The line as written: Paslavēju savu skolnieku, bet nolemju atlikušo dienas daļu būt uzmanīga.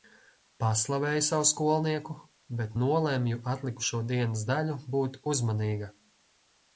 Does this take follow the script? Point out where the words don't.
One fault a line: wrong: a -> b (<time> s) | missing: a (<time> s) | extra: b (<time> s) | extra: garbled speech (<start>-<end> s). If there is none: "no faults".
no faults